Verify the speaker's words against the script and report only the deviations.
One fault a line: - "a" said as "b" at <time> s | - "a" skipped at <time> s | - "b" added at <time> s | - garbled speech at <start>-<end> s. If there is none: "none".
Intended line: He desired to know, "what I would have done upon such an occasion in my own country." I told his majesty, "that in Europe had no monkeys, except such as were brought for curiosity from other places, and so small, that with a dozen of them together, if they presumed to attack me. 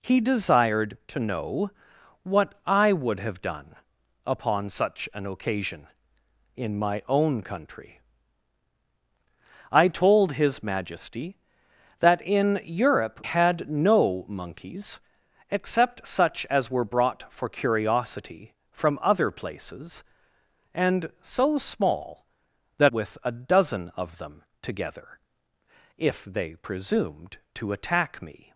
none